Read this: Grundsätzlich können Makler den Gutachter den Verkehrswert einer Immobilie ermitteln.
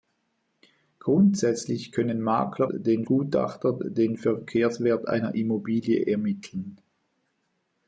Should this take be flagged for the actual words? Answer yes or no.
no